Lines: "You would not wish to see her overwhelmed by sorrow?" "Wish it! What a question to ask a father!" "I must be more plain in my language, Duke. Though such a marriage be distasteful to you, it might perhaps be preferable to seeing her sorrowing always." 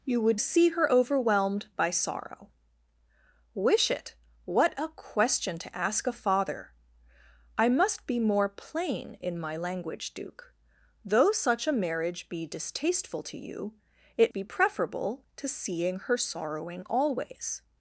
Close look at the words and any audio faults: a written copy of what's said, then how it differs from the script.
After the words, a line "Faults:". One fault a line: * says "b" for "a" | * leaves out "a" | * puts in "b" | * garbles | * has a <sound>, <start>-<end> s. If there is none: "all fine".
"You would see her overwhelmed by sorrow?" "Wish it! What a question to ask a father!" "I must be more plain in my language, Duke. Though such a marriage be distasteful to you, it be preferable to seeing her sorrowing always."
Faults:
* leaves out "not wish to"
* leaves out "might perhaps"